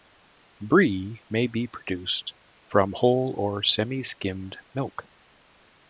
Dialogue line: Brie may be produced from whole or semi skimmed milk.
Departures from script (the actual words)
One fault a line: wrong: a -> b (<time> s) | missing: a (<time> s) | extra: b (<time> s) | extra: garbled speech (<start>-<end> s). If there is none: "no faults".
no faults